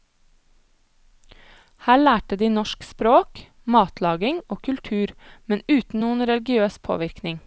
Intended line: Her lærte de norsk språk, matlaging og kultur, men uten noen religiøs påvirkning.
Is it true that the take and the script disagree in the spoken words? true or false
false